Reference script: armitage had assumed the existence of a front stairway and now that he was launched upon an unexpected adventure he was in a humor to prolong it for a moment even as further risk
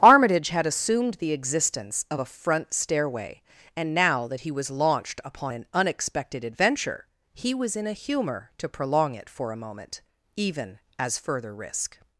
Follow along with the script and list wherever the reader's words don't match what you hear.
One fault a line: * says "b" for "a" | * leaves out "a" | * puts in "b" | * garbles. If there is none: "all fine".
all fine